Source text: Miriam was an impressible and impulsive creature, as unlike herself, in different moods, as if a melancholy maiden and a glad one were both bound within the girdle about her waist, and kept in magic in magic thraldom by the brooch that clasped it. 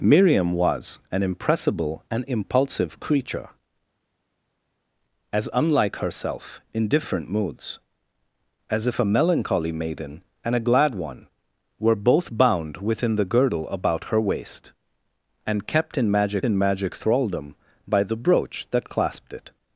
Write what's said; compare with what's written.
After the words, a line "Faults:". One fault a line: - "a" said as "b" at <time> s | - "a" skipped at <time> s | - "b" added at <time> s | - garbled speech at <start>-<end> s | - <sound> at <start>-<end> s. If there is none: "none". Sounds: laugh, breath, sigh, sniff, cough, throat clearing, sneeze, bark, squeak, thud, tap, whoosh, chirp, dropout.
Miriam was an impressible and impulsive creature, as unlike herself, in different moods, as if a melancholy maiden and a glad one were both bound within the girdle about her waist, and kept in magic in magic thraldom by the brooch that clasped it.
Faults:
none